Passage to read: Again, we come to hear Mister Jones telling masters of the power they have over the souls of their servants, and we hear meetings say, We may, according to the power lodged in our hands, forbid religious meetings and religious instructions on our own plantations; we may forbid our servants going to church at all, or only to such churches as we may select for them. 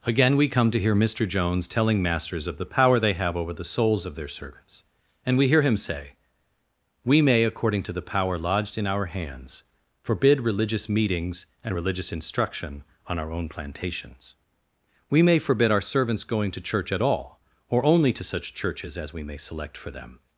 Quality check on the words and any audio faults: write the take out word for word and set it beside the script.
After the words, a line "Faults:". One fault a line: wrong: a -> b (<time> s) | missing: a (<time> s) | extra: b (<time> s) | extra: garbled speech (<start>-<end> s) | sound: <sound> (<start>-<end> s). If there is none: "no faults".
Again, we come to hear Mister Jones telling masters of the power they have over the souls of their servants, and we hear him say, We may, according to the power lodged in our hands, forbid religious meetings and religious instruction on our own plantations; we may forbid our servants going to church at all, or only to such churches as we may select for them.
Faults:
wrong: meetings -> him (5.6 s)
wrong: instructions -> instruction (12.1 s)